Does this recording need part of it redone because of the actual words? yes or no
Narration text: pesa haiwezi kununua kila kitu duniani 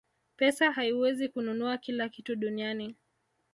no